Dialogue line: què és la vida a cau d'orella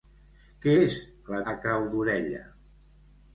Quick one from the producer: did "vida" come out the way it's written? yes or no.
no